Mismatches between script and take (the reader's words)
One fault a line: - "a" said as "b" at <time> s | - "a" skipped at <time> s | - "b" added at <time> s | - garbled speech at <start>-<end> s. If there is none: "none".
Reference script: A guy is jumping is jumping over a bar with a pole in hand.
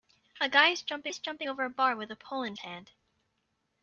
none